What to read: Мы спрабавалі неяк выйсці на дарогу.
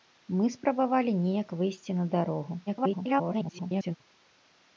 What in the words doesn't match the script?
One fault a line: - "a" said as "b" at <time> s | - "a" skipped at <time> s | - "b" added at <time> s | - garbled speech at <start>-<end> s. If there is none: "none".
- garbled speech at 2.7-4.0 s